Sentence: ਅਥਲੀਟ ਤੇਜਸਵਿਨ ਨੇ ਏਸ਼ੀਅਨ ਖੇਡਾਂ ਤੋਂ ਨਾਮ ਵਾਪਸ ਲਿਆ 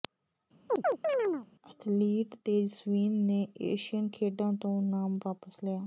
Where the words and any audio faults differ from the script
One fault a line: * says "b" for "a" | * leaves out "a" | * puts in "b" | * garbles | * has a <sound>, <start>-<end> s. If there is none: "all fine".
* has a chirp, 0.7-1.5 s